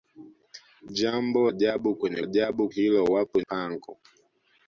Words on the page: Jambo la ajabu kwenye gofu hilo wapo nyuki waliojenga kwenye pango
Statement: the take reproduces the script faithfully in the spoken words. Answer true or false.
false